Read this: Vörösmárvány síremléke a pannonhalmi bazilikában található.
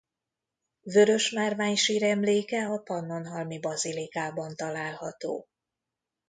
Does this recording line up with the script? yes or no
yes